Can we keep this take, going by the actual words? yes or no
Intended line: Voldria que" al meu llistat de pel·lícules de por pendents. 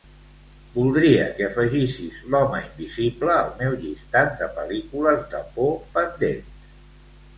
no